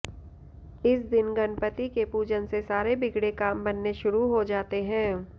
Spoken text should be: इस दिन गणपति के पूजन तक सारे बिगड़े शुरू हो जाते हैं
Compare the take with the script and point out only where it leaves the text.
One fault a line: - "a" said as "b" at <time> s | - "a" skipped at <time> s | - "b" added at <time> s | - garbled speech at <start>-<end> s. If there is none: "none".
- "तक" said as "से" at 2.5 s
- "काम बनने" added at 3.4 s